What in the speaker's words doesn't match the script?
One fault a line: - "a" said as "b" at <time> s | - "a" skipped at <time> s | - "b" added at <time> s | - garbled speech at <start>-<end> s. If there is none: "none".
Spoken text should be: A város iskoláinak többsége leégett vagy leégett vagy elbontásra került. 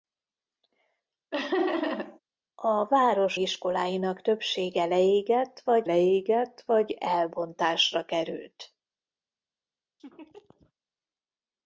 none